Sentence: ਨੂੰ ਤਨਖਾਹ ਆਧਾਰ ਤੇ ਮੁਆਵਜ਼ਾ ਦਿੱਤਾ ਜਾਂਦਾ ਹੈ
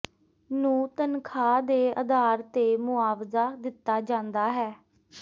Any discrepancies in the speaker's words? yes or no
yes